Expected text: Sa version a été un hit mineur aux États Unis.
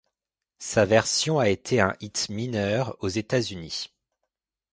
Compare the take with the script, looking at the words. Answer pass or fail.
pass